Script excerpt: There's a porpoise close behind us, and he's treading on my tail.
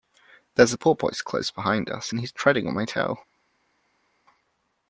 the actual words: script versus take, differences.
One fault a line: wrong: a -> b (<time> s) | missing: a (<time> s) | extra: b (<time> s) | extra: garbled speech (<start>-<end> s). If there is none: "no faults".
no faults